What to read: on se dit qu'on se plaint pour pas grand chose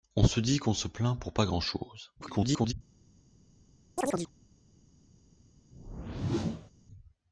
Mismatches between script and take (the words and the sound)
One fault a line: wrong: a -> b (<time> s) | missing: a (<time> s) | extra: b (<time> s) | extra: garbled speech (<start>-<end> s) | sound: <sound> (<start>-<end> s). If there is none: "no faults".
extra: garbled speech (2.2-2.7 s)
sound: chirp (4.0-4.3 s)
sound: whoosh (5.7-6.7 s)